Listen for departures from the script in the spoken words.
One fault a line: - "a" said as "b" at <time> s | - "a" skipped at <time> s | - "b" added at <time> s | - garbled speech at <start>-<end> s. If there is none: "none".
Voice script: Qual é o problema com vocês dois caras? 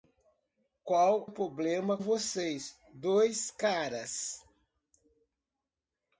- "é" skipped at 1.3 s
- "com" skipped at 2.0 s